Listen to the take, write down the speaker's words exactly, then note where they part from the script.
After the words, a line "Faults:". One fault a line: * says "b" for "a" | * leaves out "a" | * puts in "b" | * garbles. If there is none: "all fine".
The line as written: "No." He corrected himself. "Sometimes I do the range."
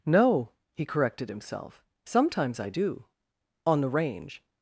"No." He corrected himself. "Sometimes I do on the range."
Faults:
* puts in "on"